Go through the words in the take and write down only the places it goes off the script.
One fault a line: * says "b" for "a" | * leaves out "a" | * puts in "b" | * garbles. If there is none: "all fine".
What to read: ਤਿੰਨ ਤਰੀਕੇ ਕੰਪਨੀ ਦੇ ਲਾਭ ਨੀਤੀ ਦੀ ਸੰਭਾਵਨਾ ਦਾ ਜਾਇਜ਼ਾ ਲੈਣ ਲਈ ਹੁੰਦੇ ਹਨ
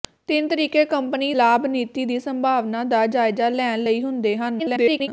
* leaves out "ਦੇ"
* garbles